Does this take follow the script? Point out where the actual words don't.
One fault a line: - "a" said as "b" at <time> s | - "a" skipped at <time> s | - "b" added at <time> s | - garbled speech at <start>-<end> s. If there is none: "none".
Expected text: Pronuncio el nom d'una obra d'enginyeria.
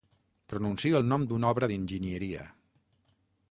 none